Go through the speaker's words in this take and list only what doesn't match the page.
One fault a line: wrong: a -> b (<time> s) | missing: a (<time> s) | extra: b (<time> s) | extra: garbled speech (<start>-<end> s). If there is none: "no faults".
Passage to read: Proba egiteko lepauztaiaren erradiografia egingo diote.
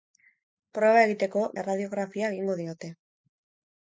missing: lepauztaiaren (1.4 s)